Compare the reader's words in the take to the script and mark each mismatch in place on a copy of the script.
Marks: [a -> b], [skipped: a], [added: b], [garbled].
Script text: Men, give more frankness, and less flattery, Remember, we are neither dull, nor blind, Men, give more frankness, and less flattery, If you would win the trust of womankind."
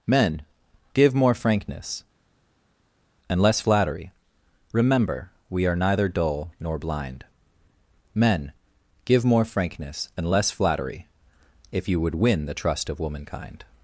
Men, give more frankness, and less flattery, Remember, we are neither dull, nor blind, Men, give more frankness, and less flattery, If you would win the trust of womankind."